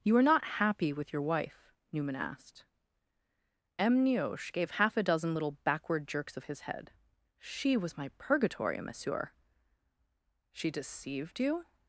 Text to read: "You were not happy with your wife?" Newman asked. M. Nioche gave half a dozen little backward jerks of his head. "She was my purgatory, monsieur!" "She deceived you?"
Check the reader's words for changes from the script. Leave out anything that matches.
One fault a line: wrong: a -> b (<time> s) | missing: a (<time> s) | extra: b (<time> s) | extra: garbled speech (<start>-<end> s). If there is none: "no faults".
wrong: were -> are (0.2 s)